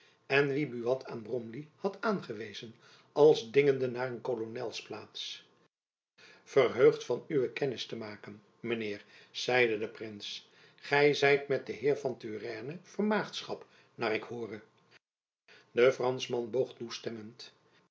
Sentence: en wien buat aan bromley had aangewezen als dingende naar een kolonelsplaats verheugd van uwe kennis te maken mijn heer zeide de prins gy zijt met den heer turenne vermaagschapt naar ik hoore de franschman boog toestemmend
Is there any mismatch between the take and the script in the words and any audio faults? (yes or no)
yes